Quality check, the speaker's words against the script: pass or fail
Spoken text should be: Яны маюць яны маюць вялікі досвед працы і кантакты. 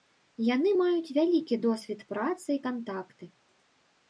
fail